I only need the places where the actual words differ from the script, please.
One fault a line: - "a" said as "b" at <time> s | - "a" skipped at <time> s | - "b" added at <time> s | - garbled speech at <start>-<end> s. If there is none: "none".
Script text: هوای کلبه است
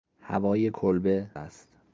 none